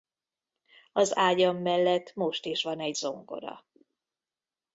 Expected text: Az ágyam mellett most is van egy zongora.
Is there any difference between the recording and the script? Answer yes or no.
no